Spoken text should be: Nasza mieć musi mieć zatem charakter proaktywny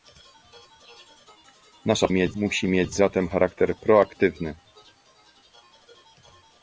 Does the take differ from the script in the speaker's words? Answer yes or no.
no